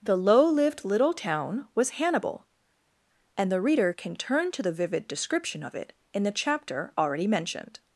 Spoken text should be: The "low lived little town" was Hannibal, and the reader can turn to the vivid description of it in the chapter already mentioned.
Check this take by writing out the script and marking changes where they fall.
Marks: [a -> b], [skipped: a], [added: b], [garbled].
The "low lived little town" was Hannibal, and the reader can turn to the vivid description of it in the chapter already mentioned.